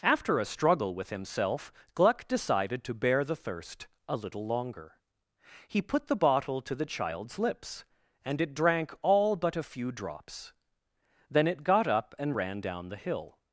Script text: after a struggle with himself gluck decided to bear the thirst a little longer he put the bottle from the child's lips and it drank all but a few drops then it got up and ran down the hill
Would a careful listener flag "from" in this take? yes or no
yes